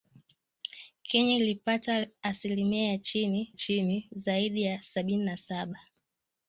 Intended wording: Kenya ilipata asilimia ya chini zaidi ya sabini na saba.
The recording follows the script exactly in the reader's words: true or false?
false